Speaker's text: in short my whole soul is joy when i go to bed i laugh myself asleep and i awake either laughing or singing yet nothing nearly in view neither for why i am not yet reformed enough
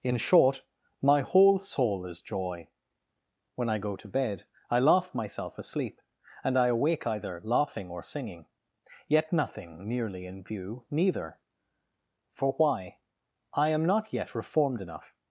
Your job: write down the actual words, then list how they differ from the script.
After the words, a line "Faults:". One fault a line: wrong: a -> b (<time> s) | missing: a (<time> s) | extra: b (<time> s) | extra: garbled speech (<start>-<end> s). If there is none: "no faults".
in short my whole soul is joy when i go to bed i laugh myself asleep and i awake either laughing or singing yet nothing nearly in view neither for why i am not yet reformed enough
Faults:
no faults